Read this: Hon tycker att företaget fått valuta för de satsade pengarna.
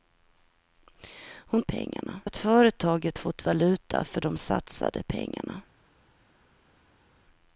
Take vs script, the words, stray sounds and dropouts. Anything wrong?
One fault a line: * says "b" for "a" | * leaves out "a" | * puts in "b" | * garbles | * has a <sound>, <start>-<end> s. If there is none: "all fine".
* says "pengarna" for "tycker"